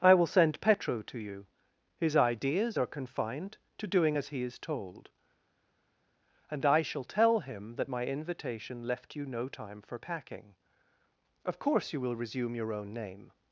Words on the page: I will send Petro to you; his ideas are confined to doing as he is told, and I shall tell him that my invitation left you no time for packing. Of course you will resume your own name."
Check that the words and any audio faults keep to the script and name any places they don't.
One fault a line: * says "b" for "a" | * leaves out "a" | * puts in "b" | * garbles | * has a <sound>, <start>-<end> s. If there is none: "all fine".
all fine